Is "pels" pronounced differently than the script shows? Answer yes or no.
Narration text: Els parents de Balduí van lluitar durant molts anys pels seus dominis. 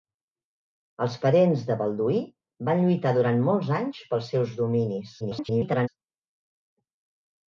no